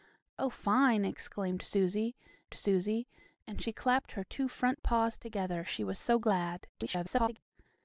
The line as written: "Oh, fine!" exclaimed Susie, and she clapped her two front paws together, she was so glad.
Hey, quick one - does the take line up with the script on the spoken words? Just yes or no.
no